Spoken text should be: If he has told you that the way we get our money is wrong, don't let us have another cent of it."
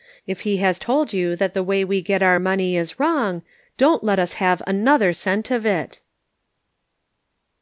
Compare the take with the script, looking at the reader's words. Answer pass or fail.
pass